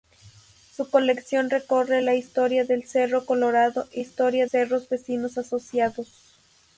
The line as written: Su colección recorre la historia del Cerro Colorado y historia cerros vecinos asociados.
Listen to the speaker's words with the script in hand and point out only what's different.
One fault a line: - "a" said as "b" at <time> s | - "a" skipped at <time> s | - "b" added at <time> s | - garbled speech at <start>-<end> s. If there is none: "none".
none